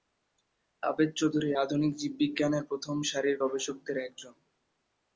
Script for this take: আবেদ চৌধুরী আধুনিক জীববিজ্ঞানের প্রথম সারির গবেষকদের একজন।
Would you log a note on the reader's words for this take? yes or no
no